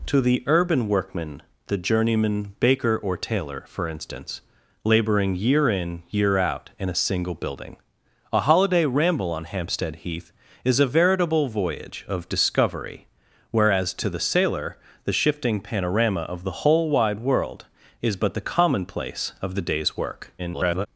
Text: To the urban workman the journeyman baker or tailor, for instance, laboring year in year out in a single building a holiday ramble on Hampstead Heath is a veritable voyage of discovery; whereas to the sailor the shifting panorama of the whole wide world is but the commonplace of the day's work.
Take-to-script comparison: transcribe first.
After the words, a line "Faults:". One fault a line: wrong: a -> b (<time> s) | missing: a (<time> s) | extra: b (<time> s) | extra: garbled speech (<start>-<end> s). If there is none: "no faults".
To the urban workman the journeyman baker or tailor, for instance, laboring year in year out in a single building a holiday ramble on Hampstead Heath is a veritable voyage of discovery; whereas to the sailor the shifting panorama of the whole wide world is but the commonplace of the day's work. [garbled]
Faults:
extra: garbled speech (20.4-20.9 s)